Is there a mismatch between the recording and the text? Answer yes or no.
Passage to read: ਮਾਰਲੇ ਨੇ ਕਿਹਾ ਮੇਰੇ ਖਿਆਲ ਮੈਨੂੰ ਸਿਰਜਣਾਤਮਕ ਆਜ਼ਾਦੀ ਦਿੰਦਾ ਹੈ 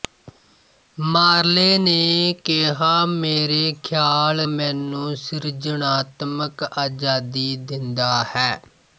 no